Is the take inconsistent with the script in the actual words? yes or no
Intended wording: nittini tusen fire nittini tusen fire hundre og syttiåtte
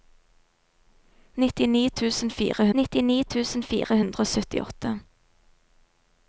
no